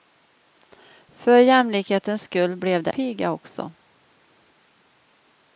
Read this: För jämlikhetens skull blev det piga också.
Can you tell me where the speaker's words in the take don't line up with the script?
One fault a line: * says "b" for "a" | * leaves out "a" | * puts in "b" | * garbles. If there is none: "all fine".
all fine